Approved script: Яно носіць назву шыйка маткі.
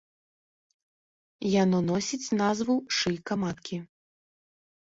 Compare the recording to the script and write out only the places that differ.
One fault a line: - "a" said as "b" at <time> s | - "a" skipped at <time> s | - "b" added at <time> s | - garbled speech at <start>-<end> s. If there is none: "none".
none